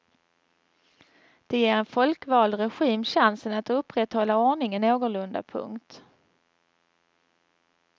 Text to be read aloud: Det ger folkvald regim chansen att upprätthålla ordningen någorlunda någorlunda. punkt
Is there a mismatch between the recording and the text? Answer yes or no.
yes